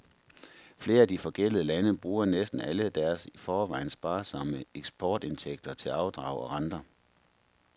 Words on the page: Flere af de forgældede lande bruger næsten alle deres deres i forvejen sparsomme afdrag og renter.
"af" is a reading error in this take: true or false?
false